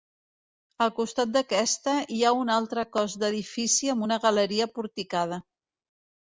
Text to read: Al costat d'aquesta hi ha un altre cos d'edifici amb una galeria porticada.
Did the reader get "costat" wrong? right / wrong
right